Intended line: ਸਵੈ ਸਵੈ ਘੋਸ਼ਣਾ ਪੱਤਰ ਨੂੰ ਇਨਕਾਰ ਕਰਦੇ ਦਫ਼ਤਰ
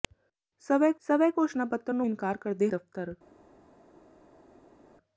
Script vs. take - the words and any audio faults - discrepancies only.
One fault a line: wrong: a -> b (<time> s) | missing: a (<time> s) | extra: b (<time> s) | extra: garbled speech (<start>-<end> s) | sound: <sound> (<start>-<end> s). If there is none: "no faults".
no faults